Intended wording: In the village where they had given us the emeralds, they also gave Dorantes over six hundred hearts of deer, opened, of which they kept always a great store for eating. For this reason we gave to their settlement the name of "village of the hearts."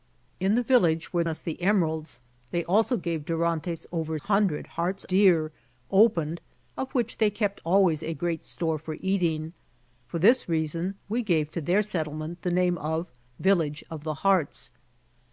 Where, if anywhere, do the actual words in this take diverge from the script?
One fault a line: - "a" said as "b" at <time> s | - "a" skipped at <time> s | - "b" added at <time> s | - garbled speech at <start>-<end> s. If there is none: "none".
- "they had given" skipped at 1.2 s
- "six" skipped at 4.2 s
- "of" skipped at 5.1 s